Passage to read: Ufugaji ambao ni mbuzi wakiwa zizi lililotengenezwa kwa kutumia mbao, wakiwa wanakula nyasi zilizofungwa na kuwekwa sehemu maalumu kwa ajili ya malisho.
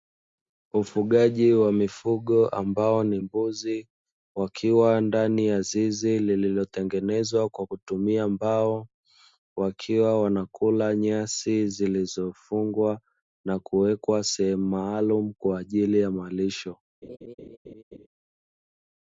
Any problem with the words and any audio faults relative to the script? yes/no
yes